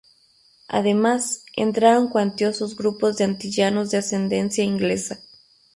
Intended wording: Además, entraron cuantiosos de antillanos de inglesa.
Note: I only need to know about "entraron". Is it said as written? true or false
true